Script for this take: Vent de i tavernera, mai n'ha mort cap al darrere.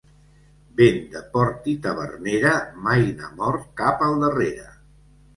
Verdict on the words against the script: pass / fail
fail